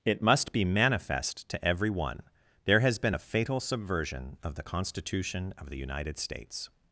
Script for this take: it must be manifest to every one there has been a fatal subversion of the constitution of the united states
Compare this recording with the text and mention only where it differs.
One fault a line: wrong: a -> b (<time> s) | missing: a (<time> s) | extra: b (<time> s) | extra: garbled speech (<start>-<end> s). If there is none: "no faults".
no faults